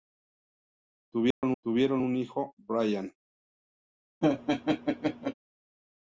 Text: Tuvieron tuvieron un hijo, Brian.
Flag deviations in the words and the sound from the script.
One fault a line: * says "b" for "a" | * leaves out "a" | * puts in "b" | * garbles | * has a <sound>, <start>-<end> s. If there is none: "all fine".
* has a dropout, 1.3-1.4 s
* has a laugh, 4.2-5.3 s